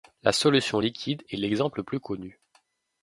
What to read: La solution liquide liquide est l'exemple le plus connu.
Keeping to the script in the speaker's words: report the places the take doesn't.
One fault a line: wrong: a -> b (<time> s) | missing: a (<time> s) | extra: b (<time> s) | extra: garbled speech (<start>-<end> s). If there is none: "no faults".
missing: liquide (1.2 s)